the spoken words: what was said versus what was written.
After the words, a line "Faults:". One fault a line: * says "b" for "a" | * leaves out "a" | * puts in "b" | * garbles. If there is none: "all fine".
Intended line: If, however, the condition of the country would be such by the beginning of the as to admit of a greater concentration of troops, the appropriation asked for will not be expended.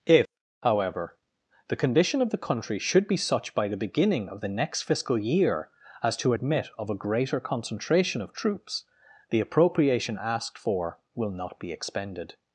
If, however, the condition of the country should be such by the beginning of the next fiscal year as to admit of a greater concentration of troops, the appropriation asked for will not be expended.
Faults:
* says "should" for "would"
* puts in "next fiscal year"